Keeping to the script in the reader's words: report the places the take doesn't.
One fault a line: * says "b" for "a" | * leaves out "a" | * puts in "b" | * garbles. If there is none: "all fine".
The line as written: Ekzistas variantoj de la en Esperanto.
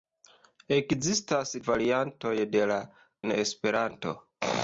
all fine